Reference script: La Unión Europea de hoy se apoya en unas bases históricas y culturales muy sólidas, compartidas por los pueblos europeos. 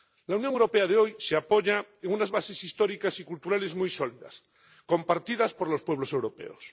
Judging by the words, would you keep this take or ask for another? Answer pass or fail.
pass